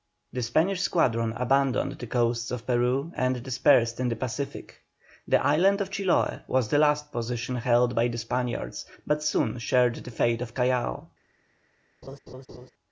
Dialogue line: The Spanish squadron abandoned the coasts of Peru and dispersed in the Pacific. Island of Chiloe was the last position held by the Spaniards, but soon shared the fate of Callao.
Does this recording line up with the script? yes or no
no